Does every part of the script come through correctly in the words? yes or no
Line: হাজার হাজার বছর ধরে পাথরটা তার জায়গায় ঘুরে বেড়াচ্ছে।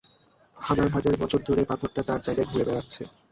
yes